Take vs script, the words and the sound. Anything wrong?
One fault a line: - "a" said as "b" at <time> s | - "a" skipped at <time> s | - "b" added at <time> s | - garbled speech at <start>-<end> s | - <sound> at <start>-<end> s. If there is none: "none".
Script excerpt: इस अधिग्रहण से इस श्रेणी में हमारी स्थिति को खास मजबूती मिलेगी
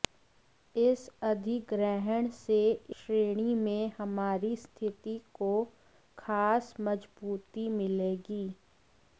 - "इस" skipped at 2.6 s